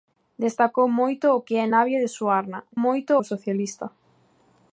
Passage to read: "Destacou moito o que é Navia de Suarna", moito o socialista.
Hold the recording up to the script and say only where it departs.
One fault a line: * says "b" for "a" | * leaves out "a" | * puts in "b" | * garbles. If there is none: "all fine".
all fine